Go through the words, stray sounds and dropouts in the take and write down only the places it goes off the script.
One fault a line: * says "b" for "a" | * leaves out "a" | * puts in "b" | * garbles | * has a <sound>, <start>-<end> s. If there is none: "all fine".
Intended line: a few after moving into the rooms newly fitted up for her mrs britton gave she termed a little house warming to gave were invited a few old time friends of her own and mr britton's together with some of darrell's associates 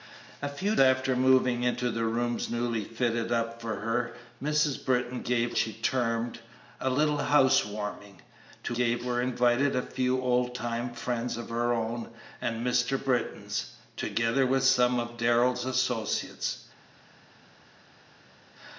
all fine